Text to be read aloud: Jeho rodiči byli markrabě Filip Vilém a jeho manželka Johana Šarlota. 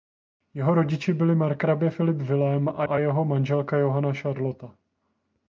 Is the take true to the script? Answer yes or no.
no